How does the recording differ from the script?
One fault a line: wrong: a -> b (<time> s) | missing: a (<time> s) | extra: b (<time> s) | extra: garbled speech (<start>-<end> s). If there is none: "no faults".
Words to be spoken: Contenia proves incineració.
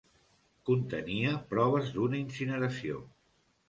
extra: d'una (2.0 s)